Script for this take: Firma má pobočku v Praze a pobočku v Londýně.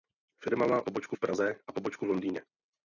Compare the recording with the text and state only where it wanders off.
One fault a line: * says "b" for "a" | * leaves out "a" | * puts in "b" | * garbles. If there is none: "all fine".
all fine